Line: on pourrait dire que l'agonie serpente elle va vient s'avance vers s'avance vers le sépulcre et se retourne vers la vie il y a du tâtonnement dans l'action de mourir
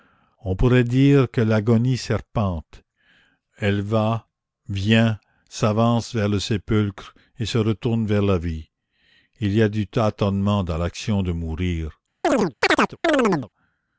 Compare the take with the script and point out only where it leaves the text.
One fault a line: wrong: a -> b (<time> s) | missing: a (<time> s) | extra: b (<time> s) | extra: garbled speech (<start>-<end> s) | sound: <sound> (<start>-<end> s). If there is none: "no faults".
missing: s'avance vers (6.3 s)
sound: chirp (12.2-13.5 s)